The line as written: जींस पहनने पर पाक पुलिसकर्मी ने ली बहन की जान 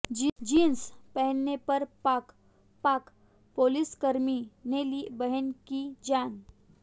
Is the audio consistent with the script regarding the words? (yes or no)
no